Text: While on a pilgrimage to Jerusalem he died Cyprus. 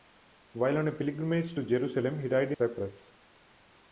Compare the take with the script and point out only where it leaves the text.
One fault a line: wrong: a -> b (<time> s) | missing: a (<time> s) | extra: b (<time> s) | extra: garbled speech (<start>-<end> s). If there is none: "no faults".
no faults